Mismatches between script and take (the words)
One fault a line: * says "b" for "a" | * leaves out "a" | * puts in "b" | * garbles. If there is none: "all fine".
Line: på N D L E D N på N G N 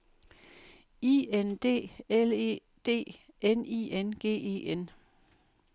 * says "I" for "på"
* says "I" for "på"
* puts in "E"